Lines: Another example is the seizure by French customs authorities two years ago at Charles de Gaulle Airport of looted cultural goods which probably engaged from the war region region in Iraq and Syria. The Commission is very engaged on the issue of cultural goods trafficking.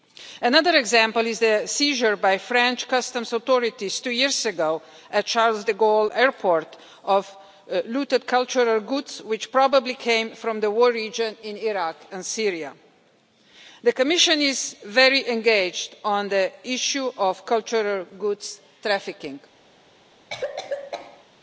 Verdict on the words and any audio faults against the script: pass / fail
fail